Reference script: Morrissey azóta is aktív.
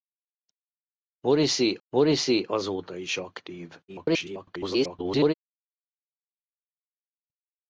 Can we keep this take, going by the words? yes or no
no